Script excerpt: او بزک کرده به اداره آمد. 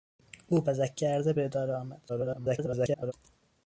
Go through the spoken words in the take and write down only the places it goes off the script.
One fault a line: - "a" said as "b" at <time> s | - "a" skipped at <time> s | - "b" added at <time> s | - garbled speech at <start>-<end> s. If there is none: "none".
- garbled speech at 2.1-3.1 s